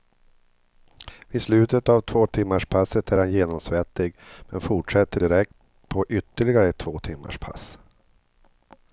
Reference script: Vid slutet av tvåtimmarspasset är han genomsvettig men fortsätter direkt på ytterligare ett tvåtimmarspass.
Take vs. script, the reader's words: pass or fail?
pass